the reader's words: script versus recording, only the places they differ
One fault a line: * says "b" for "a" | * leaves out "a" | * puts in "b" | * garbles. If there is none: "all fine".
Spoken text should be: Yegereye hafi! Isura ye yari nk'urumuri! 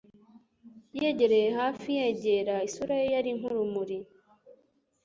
* puts in "yegera"